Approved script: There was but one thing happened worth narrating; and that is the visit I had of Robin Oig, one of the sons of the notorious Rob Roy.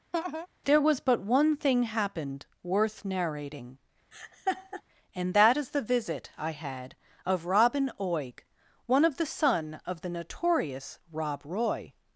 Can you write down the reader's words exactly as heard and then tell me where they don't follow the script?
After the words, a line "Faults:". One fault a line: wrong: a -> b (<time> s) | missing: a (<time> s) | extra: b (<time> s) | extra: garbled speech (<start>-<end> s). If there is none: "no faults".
There was but one thing happened worth narrating; and that is the visit I had of Robin Oig, one of the son of the notorious Rob Roy.
Faults:
wrong: sons -> son (9.3 s)